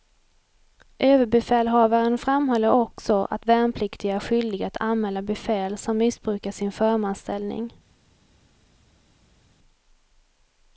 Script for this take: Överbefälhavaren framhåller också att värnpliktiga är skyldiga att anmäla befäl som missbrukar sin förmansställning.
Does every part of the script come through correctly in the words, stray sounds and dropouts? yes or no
yes